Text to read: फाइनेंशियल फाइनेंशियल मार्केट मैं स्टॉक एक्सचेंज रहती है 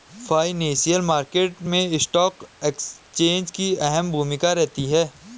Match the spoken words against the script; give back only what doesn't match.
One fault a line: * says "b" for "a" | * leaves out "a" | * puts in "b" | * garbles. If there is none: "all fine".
* leaves out "फाइनेंशियल"
* puts in "की अहम भूमिका"